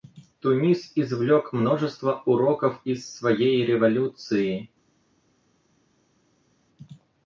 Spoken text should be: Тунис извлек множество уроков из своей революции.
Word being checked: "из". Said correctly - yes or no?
yes